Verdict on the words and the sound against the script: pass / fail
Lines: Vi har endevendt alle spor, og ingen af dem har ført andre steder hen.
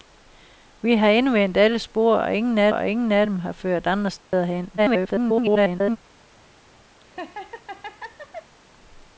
fail